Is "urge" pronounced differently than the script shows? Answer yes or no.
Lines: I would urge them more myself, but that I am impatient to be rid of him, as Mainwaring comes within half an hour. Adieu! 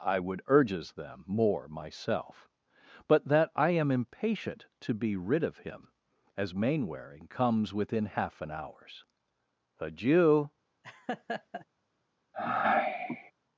yes